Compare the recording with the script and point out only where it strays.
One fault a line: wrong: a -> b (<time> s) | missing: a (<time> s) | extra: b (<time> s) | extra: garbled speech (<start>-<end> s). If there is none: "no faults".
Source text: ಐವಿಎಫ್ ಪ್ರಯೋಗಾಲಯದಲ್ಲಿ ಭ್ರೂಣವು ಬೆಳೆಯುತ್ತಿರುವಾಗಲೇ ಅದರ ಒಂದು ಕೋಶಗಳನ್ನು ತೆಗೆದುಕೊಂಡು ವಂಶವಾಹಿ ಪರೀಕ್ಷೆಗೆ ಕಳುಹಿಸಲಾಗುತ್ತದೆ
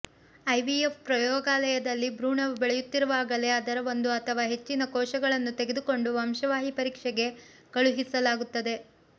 extra: ಅಥವಾ ಹೆಚ್ಚಿನ (4.2 s)